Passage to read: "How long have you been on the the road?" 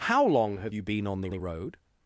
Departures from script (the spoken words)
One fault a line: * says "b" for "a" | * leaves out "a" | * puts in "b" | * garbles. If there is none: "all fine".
all fine